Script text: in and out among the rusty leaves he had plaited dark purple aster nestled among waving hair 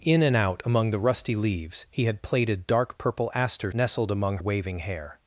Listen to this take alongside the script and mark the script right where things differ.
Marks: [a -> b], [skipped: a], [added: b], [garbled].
in and out among the rusty leaves he had plaited dark purple aster nestled among waving hair